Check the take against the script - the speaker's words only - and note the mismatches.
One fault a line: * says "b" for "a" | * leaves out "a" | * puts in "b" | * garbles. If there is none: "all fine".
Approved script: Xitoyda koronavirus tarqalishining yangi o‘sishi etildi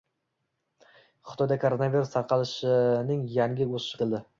all fine